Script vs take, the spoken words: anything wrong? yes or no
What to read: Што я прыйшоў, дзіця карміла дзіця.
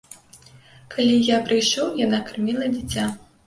yes